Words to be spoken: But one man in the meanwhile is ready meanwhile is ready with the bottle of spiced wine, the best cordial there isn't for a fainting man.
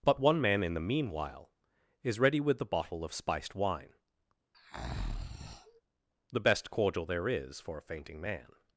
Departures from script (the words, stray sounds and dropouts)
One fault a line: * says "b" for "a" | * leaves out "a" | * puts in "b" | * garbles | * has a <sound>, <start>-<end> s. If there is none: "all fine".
* leaves out "meanwhile is ready"
* has a breath, 4.5-5.8 s
* says "is" for "isn't"